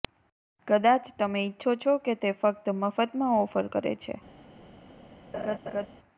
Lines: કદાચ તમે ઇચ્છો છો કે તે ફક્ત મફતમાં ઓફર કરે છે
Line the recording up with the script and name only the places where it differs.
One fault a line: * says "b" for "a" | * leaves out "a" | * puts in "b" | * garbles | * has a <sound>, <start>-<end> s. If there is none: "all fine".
* has a laugh, 5.3-5.9 s